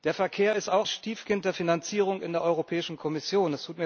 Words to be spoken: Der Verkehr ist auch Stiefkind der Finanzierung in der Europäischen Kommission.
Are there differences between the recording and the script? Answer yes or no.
no